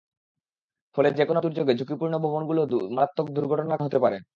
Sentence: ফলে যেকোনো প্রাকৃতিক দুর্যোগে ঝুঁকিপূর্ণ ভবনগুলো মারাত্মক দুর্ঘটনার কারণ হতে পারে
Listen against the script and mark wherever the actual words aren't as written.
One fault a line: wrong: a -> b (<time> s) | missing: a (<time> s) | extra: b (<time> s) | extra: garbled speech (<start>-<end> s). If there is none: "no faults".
missing: প্রাকৃতিক (1.4 s)
missing: কারণ (3.8 s)